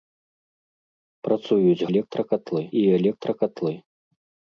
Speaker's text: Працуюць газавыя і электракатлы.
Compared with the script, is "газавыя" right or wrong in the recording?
wrong